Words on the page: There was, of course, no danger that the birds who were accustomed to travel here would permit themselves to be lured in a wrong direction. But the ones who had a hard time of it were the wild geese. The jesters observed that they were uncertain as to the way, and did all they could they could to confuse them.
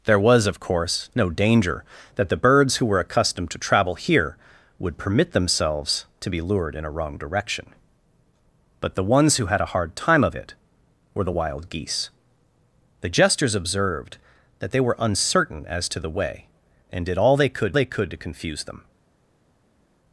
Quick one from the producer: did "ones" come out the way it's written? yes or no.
yes